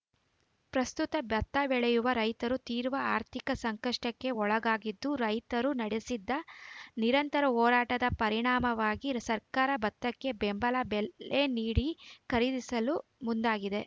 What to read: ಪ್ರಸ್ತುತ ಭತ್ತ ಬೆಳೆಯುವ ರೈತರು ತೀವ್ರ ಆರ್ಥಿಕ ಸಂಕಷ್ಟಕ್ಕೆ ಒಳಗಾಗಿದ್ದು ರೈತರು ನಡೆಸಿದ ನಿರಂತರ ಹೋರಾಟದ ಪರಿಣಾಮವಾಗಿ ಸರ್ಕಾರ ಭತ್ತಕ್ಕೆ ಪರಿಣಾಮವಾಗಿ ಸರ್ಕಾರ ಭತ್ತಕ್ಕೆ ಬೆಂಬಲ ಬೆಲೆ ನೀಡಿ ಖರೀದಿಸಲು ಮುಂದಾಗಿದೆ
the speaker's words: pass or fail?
fail